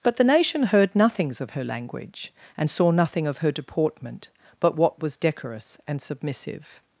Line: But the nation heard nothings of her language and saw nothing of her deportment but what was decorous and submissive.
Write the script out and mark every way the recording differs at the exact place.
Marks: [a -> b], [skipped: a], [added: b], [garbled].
But the nation heard nothings of her language and saw nothing of her deportment but what was decorous and submissive.